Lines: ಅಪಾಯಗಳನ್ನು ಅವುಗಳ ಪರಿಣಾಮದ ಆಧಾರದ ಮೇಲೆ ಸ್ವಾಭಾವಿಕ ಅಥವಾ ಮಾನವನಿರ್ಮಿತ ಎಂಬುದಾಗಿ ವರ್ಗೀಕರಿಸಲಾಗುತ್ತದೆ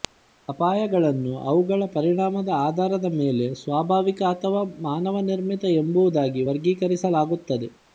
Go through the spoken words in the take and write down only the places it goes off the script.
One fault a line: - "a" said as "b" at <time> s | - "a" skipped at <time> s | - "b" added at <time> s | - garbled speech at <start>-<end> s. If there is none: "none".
none